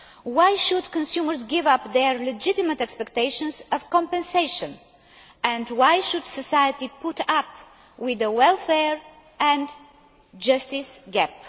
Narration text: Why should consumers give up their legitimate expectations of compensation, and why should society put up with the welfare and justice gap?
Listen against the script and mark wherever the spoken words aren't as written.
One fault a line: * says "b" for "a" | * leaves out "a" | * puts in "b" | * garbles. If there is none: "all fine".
all fine